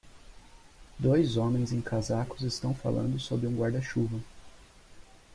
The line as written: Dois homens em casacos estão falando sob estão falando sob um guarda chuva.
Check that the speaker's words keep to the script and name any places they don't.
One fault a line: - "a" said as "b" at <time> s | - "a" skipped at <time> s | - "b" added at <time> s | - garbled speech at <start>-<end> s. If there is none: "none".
- "estão falando sob" skipped at 3.5 s